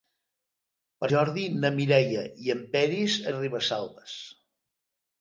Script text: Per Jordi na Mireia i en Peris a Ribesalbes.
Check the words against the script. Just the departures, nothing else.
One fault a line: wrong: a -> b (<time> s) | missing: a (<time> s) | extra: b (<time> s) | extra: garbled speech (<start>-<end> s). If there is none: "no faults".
no faults